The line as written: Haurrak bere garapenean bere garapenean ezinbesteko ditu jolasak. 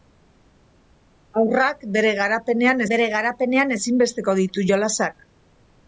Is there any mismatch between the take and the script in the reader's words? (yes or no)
no